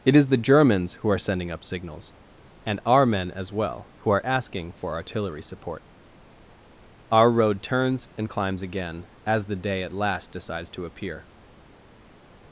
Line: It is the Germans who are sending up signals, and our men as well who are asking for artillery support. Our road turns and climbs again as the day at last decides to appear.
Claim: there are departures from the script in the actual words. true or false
false